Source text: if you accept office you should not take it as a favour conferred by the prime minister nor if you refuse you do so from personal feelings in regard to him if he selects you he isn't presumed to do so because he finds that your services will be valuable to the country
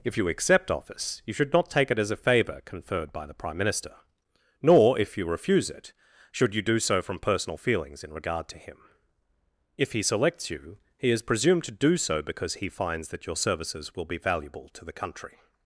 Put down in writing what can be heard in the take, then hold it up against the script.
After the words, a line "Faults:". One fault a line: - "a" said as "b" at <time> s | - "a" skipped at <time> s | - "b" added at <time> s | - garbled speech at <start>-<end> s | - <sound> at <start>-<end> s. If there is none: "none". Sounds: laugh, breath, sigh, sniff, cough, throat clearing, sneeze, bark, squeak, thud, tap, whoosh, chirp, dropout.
if you accept office you should not take it as a favour conferred by the prime minister nor if you refuse it should you do so from personal feelings in regard to him if he selects you he is presumed to do so because he finds that your services will be valuable to the country
Faults:
- "it should" added at 5.7 s
- "isn't" said as "is" at 11.1 s